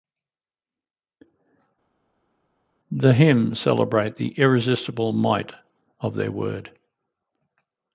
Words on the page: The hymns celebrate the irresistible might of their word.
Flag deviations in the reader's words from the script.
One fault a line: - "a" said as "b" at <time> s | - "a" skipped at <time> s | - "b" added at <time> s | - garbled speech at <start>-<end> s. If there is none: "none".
none